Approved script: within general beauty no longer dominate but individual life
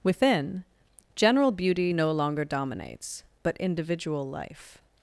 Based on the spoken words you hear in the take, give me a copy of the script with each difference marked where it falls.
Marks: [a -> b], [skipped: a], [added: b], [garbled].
within general beauty no longer [dominate -> dominates] but individual life